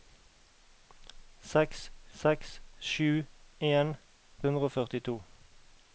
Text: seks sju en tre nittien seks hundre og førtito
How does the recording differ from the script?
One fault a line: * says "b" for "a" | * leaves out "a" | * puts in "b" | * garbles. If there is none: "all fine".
* puts in "seks"
* leaves out "tre nittien seks"